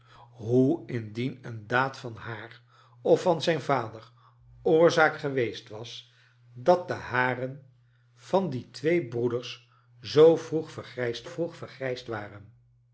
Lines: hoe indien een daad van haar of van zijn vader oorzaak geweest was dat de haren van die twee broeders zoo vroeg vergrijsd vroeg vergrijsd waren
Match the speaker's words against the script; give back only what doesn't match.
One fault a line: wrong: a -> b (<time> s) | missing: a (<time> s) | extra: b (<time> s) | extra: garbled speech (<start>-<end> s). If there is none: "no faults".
no faults